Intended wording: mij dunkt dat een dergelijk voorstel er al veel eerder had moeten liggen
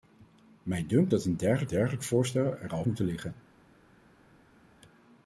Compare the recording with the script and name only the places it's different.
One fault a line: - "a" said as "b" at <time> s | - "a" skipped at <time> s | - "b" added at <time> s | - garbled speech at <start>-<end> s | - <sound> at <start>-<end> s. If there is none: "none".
- "dergelijk" added at 1.7 s
- "veel eerder had" skipped at 2.9 s